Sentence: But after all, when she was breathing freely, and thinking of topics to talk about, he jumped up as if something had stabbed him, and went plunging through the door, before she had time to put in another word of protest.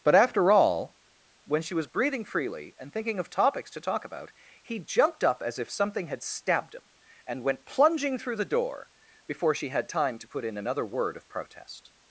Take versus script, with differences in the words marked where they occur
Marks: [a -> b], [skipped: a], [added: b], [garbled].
But after all, when she was breathing freely, and thinking of topics to talk about, he jumped up as if something had stabbed him, and went plunging through the door, before she had time to put in another word of protest.